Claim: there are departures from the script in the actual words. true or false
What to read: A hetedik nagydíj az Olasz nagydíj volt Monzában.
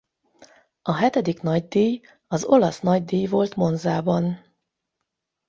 false